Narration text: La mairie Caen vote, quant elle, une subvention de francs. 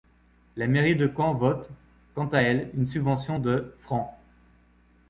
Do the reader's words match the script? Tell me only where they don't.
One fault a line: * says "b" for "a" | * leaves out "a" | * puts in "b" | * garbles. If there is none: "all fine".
* puts in "de"
* puts in "à"